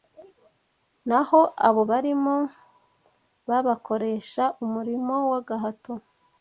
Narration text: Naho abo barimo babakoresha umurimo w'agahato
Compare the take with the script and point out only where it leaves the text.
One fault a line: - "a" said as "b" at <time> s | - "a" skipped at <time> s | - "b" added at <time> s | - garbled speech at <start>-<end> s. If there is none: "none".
none